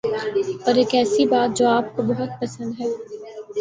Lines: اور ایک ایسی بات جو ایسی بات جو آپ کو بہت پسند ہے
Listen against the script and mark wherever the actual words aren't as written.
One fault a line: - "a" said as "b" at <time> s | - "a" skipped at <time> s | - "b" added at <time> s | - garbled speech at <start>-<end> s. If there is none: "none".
- "ایسی بات جو" skipped at 1.7 s